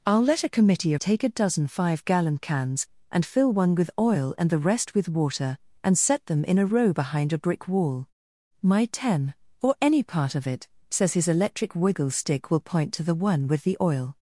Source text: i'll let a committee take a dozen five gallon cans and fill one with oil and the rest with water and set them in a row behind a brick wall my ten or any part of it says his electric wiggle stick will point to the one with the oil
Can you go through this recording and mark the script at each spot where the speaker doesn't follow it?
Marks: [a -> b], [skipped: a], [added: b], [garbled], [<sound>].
i'll let a committee take a dozen five gallon cans and fill one with oil and the rest with water and set them in a row behind a brick wall my ten or any part of it says his electric wiggle stick will point to the one with the oil